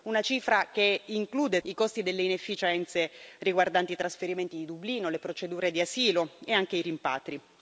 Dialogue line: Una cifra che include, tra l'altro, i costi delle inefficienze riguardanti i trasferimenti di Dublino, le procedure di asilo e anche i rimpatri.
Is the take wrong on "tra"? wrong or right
wrong